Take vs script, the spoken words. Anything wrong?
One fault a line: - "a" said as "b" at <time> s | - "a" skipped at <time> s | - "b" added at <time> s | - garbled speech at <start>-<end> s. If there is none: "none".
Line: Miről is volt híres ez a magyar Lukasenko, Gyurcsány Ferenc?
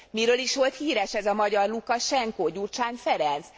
none